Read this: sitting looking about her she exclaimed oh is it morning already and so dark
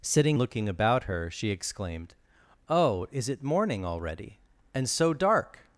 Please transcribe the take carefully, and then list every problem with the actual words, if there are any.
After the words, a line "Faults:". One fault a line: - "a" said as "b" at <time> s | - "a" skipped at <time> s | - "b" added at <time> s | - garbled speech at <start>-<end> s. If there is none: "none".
sitting looking about her she exclaimed oh is it morning already and so dark
Faults:
none